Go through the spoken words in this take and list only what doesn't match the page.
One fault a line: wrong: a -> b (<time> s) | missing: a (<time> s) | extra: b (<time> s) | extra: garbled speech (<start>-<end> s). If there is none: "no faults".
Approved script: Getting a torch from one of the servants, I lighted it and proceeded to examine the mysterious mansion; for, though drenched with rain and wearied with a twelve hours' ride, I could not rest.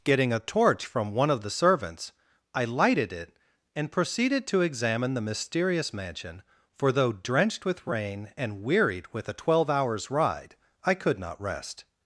no faults